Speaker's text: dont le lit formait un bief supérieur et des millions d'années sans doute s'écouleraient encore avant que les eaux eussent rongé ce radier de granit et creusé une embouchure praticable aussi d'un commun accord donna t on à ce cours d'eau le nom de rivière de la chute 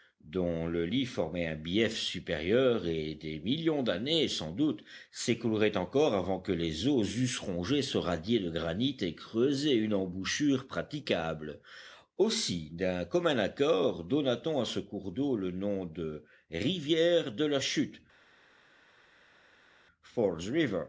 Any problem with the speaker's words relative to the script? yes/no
no